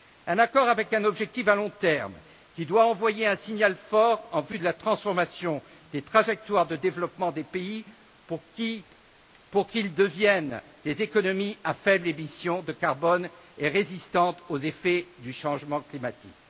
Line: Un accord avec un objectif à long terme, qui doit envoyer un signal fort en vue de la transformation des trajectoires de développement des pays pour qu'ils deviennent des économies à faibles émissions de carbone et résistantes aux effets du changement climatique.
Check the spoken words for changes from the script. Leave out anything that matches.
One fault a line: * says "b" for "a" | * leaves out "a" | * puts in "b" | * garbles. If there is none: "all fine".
all fine